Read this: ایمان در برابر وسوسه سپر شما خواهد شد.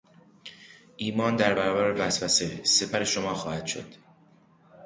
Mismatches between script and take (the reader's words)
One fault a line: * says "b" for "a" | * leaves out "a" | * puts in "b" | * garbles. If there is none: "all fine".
all fine